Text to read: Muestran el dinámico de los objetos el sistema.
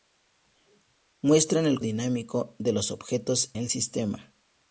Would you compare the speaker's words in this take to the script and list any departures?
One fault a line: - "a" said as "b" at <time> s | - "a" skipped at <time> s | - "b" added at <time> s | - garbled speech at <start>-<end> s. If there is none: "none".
none